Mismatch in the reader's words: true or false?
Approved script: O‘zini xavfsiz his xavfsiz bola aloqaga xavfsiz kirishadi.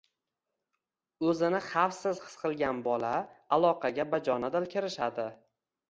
true